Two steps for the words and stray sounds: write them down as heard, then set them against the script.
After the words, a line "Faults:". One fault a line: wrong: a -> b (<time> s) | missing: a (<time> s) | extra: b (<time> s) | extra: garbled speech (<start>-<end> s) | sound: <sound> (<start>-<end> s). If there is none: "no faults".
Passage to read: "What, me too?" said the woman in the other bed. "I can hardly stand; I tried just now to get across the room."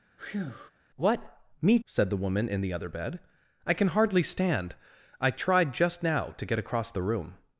"What, me?" said the woman in the other bed. "I can hardly stand; I tried just now to get across the room."
Faults:
sound: breath (0.2-0.7 s)
missing: too (1.8 s)